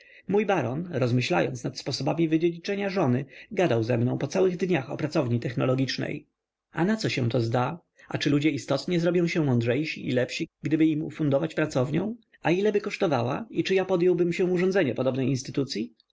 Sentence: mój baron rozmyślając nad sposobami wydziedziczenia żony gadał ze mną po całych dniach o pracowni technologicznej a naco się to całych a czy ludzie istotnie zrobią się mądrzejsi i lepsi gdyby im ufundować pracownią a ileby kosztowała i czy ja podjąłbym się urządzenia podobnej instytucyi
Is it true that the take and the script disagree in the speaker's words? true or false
true